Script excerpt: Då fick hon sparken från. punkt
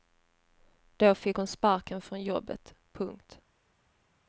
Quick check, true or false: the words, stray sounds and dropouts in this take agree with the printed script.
false